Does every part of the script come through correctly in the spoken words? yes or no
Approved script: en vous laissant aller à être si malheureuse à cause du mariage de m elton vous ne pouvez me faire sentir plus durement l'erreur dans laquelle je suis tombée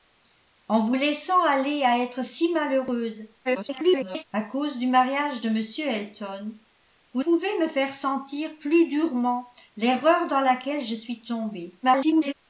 no